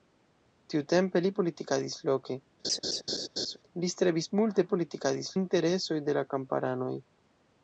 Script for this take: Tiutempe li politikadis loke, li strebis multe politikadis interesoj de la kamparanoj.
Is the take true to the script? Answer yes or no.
yes